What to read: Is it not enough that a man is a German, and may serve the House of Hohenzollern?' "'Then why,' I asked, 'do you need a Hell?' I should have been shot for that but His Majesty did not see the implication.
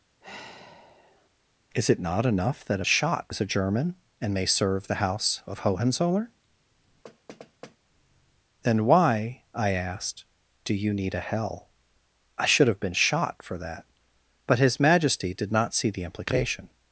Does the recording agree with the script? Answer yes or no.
no